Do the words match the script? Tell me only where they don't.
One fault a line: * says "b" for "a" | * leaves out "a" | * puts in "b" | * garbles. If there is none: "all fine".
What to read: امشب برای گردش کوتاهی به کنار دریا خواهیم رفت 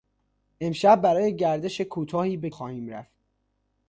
* leaves out "کنار دریا"